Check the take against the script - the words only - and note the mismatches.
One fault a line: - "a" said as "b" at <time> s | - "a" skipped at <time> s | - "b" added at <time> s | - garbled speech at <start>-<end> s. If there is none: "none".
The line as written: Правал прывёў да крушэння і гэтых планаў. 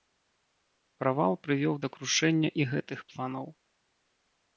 none